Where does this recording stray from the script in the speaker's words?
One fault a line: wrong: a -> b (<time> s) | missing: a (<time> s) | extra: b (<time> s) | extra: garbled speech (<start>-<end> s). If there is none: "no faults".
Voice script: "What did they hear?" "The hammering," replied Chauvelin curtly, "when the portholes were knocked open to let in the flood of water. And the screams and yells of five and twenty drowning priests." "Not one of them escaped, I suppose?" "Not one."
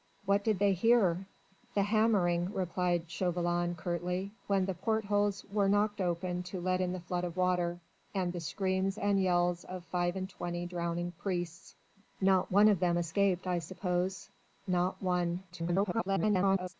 extra: garbled speech (15.5-16.7 s)